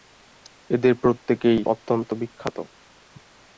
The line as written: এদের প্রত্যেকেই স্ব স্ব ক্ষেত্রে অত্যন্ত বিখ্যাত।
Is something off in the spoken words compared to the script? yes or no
yes